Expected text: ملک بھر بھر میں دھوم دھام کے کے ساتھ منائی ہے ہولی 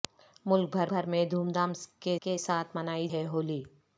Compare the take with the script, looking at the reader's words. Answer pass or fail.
pass